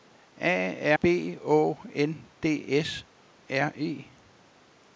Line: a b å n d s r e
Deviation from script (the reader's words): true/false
false